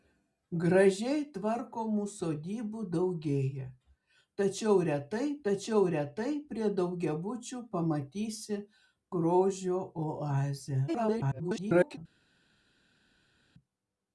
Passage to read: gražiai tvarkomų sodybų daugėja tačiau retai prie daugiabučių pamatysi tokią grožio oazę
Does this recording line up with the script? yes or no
no